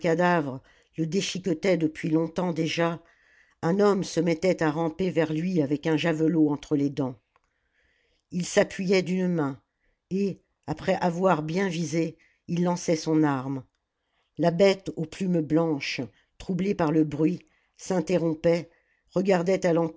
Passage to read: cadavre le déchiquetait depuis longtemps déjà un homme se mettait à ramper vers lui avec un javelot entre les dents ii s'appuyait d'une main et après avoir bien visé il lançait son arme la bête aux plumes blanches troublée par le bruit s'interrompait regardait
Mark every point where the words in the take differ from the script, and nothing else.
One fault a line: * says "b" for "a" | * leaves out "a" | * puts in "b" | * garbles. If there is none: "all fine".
all fine